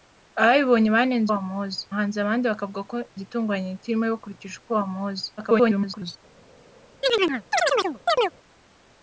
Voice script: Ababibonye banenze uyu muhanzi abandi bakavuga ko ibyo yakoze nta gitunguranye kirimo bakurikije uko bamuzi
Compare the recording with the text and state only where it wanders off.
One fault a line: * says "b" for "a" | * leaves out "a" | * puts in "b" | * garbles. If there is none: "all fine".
* says "bamuzi" for "uyu"
* leaves out "ibyo yakoze nta"
* garbles